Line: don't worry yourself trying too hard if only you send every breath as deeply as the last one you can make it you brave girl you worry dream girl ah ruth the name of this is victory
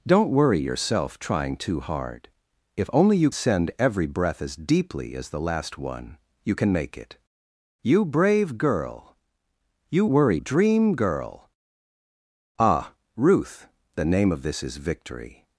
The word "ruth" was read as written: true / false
true